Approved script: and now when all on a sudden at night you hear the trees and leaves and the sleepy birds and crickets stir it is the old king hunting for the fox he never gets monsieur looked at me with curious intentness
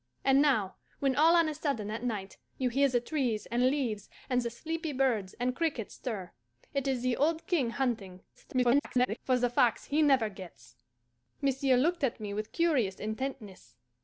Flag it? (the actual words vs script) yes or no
yes